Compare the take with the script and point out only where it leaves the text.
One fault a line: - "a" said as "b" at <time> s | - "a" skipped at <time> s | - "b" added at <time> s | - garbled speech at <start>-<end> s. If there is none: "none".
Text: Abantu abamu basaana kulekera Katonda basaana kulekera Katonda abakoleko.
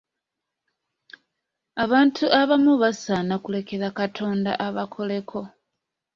- "basaana kulekera Katonda" skipped at 4.5 s